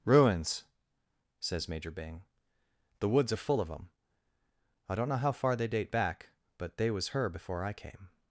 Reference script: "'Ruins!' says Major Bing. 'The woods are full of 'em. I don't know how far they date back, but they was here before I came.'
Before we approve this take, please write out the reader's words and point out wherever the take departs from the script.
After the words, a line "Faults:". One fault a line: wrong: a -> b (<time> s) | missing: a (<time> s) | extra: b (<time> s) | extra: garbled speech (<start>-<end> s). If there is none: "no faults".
"'Ruins!' says Major Bing. 'The woods are full of 'em. I don't know how far they date back, but they was her before I came.'
Faults:
wrong: here -> her (7.1 s)